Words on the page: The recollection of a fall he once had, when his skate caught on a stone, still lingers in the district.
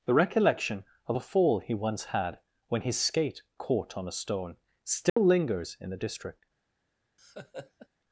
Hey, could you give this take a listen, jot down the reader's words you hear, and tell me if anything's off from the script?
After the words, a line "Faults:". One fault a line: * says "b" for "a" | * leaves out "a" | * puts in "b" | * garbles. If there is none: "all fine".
The recollection of a fall he once had, when his skate caught on a stone, still lingers in the district.
Faults:
all fine